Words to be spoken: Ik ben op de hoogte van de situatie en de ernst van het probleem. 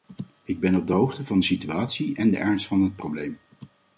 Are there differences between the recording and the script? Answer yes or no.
no